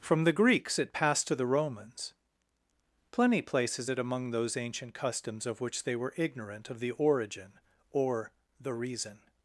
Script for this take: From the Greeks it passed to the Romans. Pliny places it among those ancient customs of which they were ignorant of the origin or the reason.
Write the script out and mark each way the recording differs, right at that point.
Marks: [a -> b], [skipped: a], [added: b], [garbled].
From the Greeks it passed to the Romans. Pliny places it among those ancient customs of which they were ignorant of the origin or the reason.